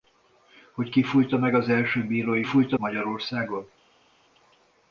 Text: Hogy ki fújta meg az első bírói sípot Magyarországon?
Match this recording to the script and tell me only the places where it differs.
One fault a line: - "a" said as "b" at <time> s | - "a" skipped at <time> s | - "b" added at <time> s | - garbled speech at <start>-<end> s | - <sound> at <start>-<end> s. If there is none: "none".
- "sípot" said as "fújta" at 2.4 s